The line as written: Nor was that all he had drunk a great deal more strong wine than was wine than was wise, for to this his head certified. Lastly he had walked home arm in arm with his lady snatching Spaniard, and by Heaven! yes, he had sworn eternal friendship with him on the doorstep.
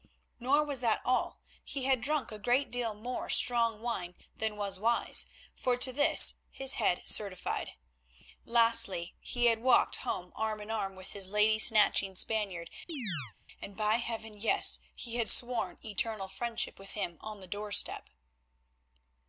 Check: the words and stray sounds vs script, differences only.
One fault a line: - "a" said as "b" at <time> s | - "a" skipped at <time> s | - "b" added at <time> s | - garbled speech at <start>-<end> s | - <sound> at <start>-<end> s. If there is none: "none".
- "wine than was" skipped at 4.8 s
- chirp at 12.9-13.3 s